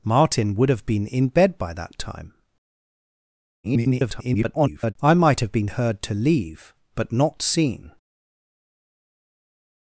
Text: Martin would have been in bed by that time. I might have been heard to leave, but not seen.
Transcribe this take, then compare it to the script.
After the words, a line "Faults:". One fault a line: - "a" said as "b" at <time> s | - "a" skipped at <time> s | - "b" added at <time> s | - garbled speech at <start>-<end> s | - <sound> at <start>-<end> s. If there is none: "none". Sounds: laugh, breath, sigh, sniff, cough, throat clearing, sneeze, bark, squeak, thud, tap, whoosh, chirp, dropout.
Martin would have been in bed by that time. [garbled] I might have been heard to leave, but not seen.
Faults:
- garbled speech at 3.6-4.9 s